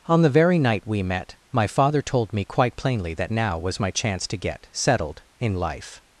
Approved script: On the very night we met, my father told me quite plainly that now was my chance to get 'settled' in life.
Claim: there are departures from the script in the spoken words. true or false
false